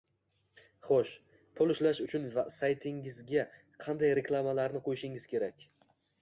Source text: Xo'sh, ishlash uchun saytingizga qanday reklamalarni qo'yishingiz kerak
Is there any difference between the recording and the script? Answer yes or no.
yes